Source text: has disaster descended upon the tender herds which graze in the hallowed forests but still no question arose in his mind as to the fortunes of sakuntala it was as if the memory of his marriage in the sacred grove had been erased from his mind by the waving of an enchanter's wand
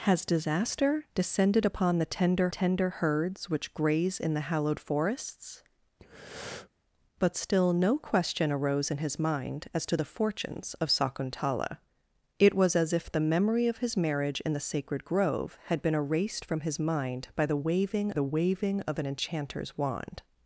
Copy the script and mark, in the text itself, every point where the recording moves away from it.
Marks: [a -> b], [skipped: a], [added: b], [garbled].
has disaster descended upon the tender [added: tender] herds which graze in the hallowed forests but still no question arose in his mind as to the fortunes of sakuntala it was as if the memory of his marriage in the sacred grove had been erased from his mind by the waving [added: the waving] of an enchanter's wand